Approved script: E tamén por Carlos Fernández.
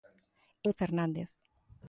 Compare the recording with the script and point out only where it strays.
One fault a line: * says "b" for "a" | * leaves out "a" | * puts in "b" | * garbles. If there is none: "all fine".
* leaves out "tamén por Carlos"